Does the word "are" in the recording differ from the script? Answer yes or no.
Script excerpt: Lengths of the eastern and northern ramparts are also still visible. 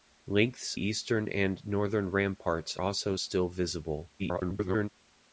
yes